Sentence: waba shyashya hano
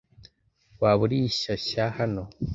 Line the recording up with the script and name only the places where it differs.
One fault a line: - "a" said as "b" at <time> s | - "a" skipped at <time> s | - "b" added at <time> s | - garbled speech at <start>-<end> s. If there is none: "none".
- "uri" added at 1.1 s